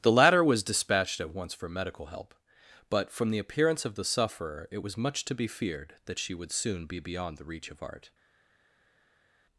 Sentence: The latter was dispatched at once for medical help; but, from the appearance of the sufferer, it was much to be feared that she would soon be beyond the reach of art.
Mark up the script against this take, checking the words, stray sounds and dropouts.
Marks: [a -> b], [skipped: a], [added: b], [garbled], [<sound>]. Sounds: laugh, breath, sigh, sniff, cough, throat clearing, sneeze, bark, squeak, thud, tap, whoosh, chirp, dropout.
The latter was dispatched at once for medical help; but, from the appearance of the sufferer, it was much to be feared that she would soon be beyond the reach of art.